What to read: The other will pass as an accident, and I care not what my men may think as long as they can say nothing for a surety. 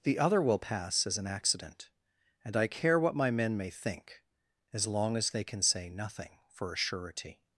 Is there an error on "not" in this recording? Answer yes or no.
yes